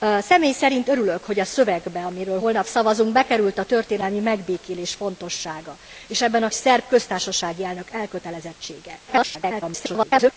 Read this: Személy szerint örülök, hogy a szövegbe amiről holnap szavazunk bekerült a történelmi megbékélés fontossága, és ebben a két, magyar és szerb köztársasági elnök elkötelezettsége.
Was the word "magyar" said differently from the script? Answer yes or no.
yes